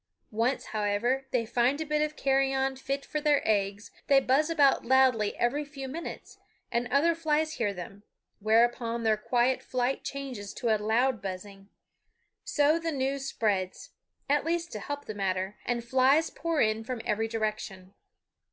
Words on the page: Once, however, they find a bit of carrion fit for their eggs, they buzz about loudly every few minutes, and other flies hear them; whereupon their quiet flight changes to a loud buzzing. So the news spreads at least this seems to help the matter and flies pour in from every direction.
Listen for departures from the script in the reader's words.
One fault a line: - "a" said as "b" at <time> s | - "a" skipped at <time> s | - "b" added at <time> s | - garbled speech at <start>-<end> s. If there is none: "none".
- "this seems" skipped at 14.7 s